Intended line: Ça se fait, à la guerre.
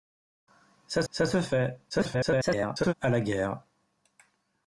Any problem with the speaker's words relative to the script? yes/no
yes